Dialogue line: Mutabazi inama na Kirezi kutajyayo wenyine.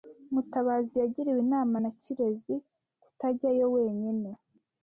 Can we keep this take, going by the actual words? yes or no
no